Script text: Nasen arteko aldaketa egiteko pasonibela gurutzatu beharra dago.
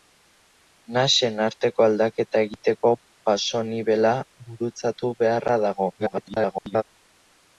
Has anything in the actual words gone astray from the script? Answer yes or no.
yes